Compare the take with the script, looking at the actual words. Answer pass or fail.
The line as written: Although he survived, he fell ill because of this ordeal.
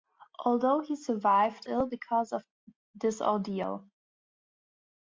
fail